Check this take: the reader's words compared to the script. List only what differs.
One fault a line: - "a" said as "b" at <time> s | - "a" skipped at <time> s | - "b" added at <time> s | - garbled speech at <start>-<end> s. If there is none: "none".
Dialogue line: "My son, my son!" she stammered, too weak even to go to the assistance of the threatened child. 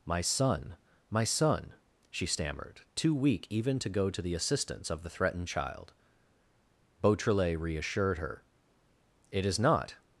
- "Beautrelet reassured her It is not" added at 7.0 s